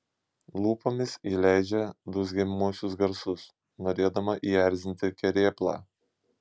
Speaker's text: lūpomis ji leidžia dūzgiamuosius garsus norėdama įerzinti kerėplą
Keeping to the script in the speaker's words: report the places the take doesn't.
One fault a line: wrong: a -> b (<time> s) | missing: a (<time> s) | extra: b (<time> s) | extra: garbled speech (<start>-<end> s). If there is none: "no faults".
no faults